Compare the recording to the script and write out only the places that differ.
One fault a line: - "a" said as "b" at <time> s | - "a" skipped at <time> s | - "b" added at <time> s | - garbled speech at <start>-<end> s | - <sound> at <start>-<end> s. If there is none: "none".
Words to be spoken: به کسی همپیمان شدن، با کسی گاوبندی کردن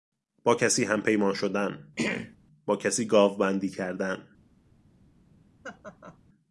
- "به" said as "با" at 0.4 s
- throat clearing at 2.0-2.4 s
- laugh at 5.6-6.2 s